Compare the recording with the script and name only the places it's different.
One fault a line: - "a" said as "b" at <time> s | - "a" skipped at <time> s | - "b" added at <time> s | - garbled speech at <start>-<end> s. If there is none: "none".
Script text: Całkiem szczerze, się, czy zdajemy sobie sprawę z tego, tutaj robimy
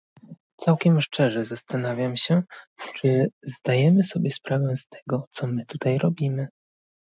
- "zastanawiam" added at 1.4 s
- "co my" added at 5.3 s